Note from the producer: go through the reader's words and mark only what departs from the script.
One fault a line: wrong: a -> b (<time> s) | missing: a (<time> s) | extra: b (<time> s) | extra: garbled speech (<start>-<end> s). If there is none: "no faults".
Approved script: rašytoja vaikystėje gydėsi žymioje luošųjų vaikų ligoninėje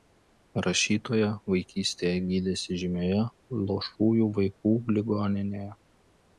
no faults